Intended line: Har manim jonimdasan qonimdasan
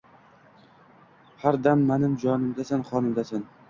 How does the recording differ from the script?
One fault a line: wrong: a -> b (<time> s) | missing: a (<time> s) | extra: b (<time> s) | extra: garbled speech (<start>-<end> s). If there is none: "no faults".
extra: dam (1.7 s)